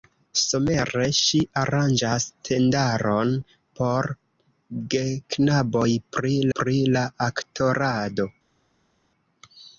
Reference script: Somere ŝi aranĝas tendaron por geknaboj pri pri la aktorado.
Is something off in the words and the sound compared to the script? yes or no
no